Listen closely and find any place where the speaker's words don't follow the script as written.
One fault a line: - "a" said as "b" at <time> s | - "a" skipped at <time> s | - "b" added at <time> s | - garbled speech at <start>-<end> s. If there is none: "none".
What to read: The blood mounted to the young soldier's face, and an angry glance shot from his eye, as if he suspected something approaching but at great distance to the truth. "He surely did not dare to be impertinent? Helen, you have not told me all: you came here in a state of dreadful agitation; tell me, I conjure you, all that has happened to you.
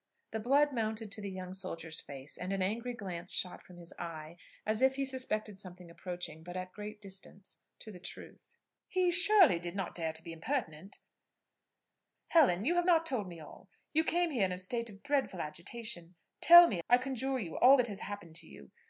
none